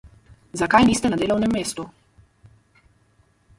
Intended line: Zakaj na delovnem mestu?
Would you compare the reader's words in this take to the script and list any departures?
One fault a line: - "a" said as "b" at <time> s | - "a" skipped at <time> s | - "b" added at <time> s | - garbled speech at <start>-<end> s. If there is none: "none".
- "niste" added at 0.8 s